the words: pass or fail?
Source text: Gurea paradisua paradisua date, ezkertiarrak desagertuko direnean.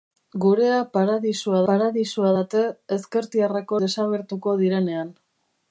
pass